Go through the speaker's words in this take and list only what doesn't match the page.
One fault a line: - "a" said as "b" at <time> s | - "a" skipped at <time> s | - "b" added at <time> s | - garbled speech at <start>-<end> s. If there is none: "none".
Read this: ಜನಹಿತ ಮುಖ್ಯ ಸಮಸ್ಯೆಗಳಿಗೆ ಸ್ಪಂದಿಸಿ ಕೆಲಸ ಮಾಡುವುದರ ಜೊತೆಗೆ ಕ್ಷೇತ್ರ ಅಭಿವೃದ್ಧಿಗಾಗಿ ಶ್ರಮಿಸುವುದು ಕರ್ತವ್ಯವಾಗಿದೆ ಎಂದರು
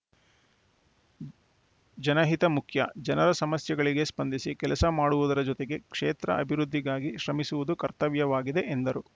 - "ಜನರ" added at 3.0 s